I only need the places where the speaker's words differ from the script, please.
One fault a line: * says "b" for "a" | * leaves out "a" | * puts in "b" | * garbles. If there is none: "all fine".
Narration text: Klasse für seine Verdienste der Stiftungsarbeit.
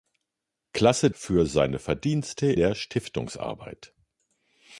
all fine